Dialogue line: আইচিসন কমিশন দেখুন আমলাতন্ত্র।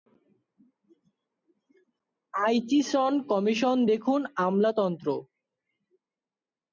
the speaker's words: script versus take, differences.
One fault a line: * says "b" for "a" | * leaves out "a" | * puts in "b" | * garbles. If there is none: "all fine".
all fine